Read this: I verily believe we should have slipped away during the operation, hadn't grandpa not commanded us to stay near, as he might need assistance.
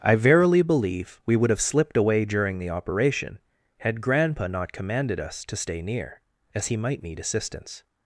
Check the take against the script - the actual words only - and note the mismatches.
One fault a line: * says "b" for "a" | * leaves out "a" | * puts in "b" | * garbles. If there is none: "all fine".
* says "would" for "should"
* says "had" for "hadn't"